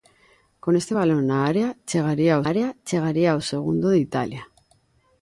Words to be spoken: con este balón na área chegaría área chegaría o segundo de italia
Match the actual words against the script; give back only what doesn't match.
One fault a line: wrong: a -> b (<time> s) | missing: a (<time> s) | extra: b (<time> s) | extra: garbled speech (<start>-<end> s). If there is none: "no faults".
no faults